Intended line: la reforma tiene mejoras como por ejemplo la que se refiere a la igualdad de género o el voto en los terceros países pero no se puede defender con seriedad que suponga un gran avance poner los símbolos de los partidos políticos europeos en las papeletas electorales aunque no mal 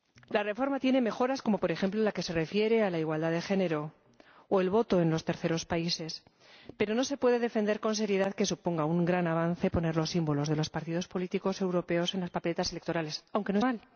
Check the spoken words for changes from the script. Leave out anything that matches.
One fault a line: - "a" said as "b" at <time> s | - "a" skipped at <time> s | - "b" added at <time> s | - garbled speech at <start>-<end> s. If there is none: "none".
none